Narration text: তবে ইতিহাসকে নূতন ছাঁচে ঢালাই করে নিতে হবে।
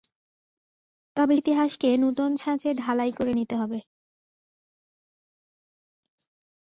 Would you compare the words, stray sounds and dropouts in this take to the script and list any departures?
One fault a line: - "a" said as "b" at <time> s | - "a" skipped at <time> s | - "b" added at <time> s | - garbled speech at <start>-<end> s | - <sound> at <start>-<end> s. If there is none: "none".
none